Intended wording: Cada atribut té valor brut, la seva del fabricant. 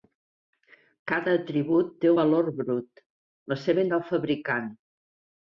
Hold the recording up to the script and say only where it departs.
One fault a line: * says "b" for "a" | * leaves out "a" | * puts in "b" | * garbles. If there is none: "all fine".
all fine